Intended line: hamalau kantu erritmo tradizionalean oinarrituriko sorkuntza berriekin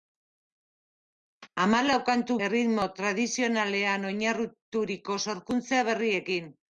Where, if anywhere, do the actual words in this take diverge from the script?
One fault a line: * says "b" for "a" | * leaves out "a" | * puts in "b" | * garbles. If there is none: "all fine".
all fine